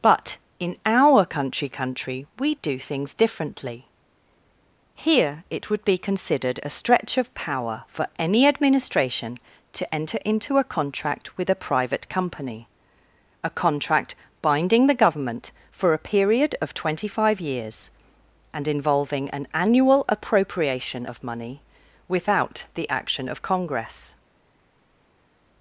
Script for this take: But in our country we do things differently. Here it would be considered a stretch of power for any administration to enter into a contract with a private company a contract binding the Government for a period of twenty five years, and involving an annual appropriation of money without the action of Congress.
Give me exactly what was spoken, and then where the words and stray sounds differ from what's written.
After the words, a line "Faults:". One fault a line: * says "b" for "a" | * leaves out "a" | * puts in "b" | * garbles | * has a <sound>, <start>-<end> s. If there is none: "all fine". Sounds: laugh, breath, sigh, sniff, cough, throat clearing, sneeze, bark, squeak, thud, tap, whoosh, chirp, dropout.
But in our country country we do things differently. Here it would be considered a stretch of power for any administration to enter into a contract with a private company a contract binding the Government for a period of twenty five years, and involving an annual appropriation of money without the action of Congress.
Faults:
* puts in "country"